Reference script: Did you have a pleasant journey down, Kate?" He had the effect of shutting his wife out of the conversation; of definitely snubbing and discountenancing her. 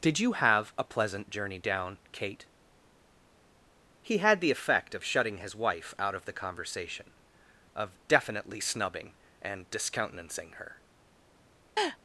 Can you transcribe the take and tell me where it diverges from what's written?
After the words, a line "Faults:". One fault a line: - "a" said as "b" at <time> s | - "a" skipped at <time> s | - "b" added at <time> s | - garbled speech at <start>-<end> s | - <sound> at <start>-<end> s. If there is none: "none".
Did you have a pleasant journey down, Kate?" He had the effect of shutting his wife out of the conversation; of definitely snubbing and discountenancing her.
Faults:
- laugh at 11.8-12.0 s